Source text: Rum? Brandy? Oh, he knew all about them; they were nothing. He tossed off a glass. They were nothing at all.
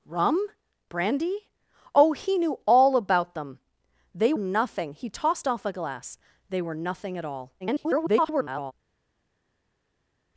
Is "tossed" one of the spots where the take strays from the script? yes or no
no